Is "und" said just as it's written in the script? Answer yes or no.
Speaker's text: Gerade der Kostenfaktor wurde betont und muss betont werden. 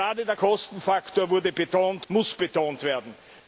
no